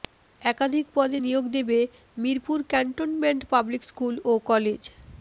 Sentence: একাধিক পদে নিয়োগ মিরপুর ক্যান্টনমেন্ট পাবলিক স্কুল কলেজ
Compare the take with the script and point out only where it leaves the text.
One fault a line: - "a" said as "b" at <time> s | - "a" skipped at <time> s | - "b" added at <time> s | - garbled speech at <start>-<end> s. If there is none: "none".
- "দেবে" added at 1.6 s
- "ও" added at 4.2 s